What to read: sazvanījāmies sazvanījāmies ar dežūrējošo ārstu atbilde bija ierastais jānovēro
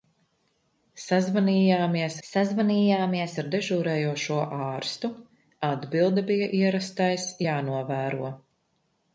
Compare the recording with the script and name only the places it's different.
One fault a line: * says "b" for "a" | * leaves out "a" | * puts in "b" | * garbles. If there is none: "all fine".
all fine